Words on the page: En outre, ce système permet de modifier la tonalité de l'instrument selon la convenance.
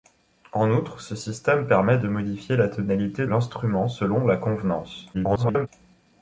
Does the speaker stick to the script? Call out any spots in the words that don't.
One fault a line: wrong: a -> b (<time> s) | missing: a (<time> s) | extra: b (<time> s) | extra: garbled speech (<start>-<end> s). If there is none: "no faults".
missing: de (3.3 s)
extra: garbled speech (5.1-5.7 s)